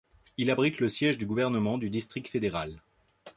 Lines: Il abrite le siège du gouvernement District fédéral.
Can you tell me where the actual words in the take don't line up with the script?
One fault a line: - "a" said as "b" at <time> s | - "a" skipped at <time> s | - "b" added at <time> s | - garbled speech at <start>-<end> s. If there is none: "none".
- "du" added at 1.8 s